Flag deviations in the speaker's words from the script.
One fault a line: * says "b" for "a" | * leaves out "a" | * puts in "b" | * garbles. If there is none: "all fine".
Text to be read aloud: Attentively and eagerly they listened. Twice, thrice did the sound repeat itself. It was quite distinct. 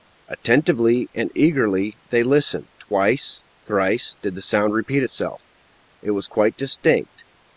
all fine